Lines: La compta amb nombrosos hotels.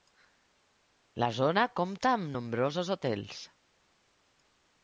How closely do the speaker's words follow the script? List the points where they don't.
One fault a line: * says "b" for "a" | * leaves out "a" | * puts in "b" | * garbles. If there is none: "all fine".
* puts in "zona"